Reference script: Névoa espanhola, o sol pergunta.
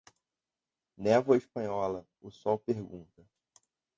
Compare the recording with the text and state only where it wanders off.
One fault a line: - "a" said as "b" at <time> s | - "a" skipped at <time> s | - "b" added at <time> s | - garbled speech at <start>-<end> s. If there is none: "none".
none